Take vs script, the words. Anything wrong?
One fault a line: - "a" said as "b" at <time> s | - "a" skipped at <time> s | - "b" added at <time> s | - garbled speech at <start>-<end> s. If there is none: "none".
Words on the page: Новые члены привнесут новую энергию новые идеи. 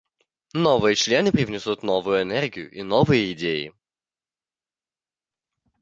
- "и" added at 2.7 s